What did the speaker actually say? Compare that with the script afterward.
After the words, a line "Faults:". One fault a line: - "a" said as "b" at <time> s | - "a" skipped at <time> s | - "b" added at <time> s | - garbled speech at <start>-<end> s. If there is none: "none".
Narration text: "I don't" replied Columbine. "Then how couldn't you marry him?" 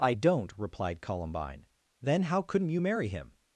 "I don't" replied Columbine. "Then how couldn't you marry him?"
Faults:
none